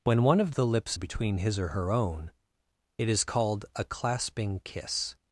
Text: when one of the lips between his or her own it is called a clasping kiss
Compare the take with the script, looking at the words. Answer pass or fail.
pass